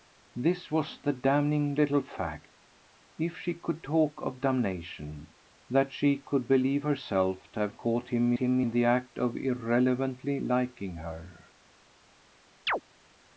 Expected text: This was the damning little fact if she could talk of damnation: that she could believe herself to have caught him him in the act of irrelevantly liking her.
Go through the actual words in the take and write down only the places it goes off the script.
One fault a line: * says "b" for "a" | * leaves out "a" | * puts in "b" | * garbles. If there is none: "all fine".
all fine